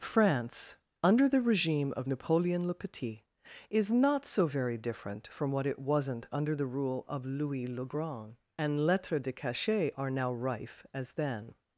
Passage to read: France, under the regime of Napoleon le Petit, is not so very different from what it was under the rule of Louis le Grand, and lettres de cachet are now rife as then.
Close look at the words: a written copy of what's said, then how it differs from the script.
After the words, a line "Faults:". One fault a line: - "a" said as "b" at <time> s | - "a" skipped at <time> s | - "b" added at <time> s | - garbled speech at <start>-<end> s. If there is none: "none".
France, under the regime of Napoleon le Petit, is not so very different from what it wasn't under the rule of Louis le Grand, and lettres de cachet are now rife as then.
Faults:
- "was" said as "wasn't" at 5.8 s